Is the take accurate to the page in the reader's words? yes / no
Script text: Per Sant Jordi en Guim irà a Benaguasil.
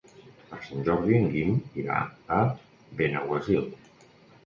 yes